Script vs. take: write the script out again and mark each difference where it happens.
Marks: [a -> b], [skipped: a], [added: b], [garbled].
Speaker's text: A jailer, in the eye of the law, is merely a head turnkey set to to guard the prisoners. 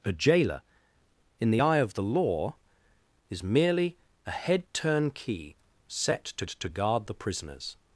A jailer, in the eye of the law, is merely a head turnkey set to to guard the prisoners.